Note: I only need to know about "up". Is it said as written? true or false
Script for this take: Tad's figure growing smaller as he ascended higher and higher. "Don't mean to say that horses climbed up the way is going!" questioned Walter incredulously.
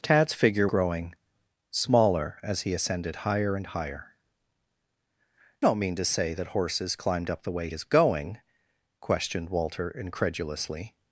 true